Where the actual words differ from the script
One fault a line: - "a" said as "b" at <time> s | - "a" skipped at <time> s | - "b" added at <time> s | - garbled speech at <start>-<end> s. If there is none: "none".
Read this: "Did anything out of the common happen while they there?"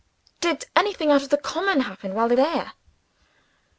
none